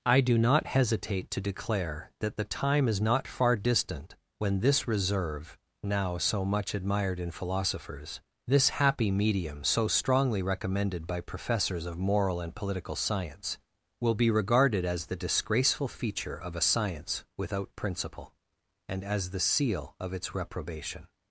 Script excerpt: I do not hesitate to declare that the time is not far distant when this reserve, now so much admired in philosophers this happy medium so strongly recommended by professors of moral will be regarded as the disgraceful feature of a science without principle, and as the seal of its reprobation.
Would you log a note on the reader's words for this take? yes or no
yes